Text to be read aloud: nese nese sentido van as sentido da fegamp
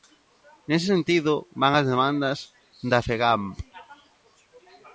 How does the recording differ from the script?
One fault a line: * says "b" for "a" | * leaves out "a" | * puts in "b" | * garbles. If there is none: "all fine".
* leaves out "nese"
* says "demandas" for "sentido"